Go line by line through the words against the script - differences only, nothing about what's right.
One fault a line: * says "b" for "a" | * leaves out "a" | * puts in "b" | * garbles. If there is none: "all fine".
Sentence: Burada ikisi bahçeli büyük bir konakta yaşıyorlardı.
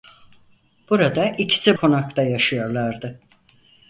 * leaves out "bahçeli büyük bir"